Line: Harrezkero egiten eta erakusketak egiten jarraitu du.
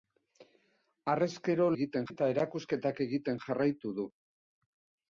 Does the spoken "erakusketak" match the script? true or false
true